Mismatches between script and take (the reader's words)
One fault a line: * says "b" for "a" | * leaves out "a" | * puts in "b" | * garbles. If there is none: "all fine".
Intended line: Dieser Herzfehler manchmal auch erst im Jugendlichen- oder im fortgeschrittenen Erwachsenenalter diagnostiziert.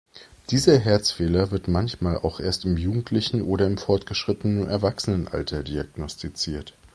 * puts in "wird"